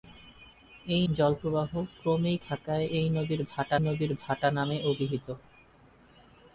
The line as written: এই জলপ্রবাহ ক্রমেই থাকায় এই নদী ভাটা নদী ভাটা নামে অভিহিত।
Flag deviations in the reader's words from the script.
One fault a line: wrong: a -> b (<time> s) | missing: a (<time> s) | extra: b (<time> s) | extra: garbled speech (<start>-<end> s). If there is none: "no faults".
no faults